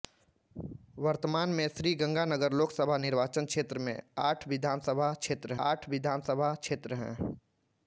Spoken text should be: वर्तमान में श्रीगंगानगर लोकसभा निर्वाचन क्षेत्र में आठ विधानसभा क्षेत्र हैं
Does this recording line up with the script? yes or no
no